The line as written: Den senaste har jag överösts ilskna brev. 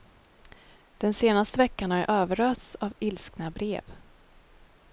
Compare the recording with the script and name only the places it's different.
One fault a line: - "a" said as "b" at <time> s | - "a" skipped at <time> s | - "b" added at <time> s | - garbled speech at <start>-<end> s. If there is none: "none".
- "veckan" added at 1.6 s
- "av" added at 2.7 s